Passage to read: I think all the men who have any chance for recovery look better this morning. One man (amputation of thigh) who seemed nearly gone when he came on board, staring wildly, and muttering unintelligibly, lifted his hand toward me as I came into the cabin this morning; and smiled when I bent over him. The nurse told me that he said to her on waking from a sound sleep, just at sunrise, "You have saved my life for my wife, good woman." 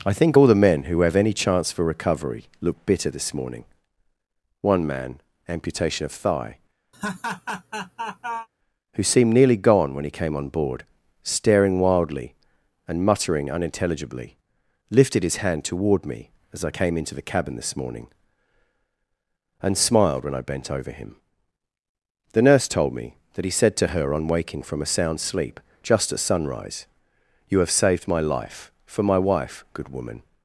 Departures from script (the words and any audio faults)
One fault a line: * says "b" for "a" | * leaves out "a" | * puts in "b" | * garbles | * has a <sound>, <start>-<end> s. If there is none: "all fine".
* says "bitter" for "better"
* has a laugh, 6.9-8.5 s